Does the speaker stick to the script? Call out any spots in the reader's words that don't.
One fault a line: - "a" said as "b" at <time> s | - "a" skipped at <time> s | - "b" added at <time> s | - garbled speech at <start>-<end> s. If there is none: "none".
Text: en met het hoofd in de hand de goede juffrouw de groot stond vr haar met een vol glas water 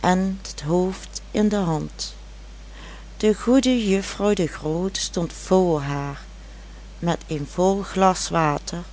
- "met" skipped at 0.4 s